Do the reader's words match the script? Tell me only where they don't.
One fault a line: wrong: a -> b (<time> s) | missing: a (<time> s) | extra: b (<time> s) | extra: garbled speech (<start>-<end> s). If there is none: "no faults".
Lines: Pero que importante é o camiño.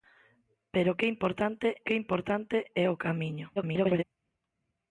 extra: que importante (1.8 s)
extra: garbled speech (3.6-4.0 s)